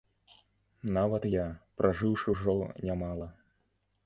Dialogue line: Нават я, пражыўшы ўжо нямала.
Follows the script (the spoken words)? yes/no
yes